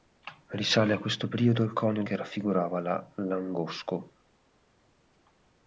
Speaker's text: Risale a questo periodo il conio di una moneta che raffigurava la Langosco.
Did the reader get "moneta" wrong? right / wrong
wrong